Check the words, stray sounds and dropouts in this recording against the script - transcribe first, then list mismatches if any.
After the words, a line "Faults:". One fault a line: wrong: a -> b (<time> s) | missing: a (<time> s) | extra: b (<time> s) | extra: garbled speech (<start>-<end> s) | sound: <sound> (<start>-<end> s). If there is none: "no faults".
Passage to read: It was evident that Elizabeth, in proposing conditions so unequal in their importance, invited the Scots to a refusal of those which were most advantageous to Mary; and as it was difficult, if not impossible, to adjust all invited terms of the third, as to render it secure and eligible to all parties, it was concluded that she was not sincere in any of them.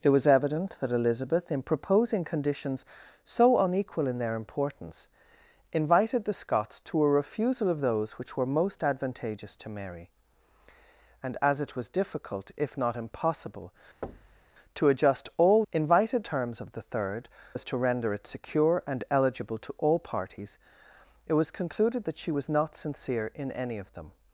It was evident that Elizabeth, in proposing conditions so unequal in their importance, invited the Scots to a refusal of those which were most advantageous to Mary; and as it was difficult, if not impossible, to adjust all invited terms of the third, as to render it secure and eligible to all parties, it was concluded that she was not sincere in any of them.
Faults:
sound: thud (14.0-14.5 s)